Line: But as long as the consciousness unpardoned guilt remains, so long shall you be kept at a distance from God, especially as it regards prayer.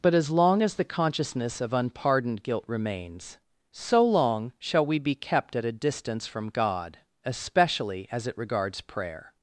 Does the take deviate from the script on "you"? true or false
true